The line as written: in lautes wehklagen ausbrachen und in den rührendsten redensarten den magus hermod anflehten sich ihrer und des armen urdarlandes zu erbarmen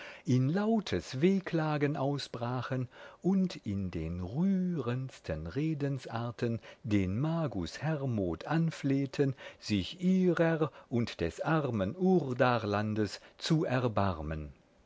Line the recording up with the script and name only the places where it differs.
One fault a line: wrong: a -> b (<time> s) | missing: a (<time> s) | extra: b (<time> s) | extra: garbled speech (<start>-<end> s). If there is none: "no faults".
no faults